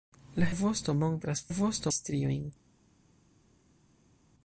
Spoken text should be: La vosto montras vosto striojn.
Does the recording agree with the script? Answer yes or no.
yes